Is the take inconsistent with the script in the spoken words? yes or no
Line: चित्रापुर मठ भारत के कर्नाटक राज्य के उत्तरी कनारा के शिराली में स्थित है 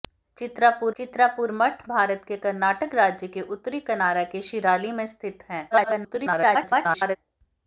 yes